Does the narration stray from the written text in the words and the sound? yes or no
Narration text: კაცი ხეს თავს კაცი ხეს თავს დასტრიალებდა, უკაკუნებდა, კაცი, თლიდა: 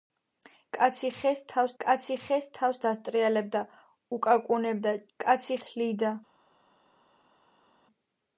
no